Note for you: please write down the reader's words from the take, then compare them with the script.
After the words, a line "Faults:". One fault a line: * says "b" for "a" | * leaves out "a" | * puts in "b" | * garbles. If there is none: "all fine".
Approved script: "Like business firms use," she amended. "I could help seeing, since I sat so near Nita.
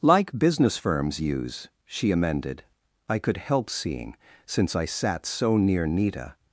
"Like business firms use," she amended. "I could help seeing, since I sat so near Nita.
Faults:
all fine